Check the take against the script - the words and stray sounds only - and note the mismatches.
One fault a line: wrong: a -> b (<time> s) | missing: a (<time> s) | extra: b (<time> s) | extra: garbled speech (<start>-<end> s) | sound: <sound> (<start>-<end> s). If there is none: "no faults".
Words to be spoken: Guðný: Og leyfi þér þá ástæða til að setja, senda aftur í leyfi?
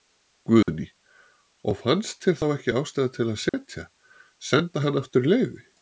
sound: dropout (0.6-0.7 s)
wrong: leyfi -> fannst (1.8 s)
extra: ekki (2.6 s)
sound: dropout (3.5-3.5 s)
extra: hann (4.9 s)